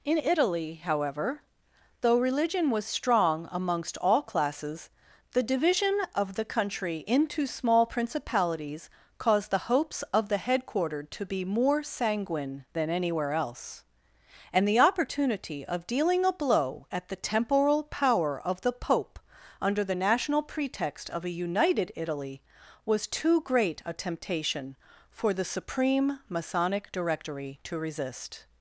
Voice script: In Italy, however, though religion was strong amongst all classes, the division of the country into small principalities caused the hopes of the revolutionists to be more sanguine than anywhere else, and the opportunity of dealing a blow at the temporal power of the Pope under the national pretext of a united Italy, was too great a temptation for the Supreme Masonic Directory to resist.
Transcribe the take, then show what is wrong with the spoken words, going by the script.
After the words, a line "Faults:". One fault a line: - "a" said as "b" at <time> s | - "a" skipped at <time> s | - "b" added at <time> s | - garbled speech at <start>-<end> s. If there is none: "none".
In Italy, however, though religion was strong amongst all classes, the division of the country into small principalities caused the hopes of the headquartered to be more sanguine than anywhere else, and the opportunity of dealing a blow at the temporal power of the Pope under the national pretext of a united Italy, was too great a temptation for the Supreme Masonic Directory to resist.
Faults:
- "revolutionists" said as "headquartered" at 10.4 s